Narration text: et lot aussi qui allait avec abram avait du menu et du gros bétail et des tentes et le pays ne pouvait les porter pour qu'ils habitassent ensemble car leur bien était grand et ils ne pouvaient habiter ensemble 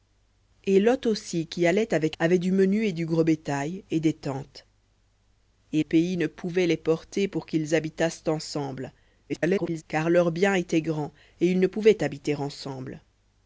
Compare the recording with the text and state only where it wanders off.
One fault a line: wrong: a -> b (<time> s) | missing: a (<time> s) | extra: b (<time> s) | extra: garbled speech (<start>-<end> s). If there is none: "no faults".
missing: abram (2.2 s)
missing: le (5.8 s)
extra: garbled speech (9.3-9.8 s)